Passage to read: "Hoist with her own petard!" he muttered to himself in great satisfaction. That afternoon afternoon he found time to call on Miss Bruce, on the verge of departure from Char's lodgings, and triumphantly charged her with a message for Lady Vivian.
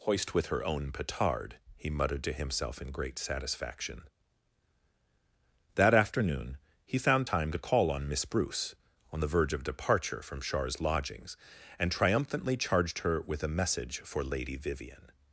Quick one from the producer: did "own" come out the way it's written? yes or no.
yes